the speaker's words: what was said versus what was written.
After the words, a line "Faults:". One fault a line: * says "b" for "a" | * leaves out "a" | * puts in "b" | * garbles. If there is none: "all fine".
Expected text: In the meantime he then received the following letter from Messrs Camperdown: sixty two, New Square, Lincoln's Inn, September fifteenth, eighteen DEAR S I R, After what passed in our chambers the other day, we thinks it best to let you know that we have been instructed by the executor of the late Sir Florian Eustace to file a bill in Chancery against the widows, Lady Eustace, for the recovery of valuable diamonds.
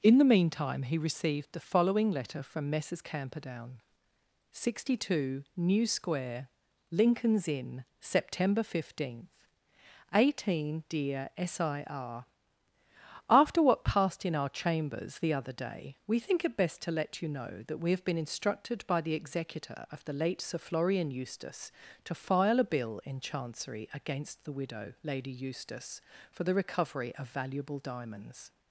In the meantime he received the following letter from Messrs Camperdown: sixty two, New Square, Lincoln's Inn, September fifteenth, eighteen DEAR S I R, After what passed in our chambers the other day, we think it best to let you know that we have been instructed by the executor of the late Sir Florian Eustace to file a bill in Chancery against the widow, Lady Eustace, for the recovery of valuable diamonds.
Faults:
* leaves out "then"
* says "think" for "thinks"
* says "widow" for "widows"